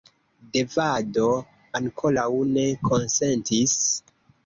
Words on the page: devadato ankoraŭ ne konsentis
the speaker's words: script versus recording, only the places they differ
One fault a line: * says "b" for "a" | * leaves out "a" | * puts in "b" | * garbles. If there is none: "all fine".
all fine